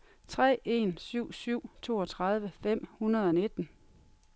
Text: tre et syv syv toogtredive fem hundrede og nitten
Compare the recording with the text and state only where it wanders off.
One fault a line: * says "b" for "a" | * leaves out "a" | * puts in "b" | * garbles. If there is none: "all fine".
* says "en" for "et"